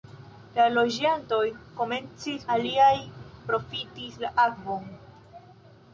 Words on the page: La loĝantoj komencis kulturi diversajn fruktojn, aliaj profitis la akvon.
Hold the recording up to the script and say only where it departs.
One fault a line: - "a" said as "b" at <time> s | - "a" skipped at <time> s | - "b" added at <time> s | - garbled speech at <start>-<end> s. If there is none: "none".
- "kulturi diversajn fruktojn" skipped at 2.5 s